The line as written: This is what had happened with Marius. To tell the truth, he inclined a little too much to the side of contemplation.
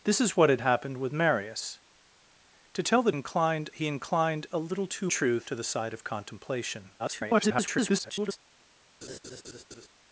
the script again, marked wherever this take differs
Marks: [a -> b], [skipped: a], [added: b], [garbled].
This is what had happened with Marius. To tell the [truth, -> inclined] he inclined a little too [much -> truth] to the side of contemplation. [garbled]